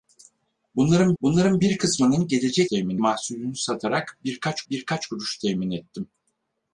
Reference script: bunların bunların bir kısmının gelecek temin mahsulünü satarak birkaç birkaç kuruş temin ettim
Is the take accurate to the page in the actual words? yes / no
yes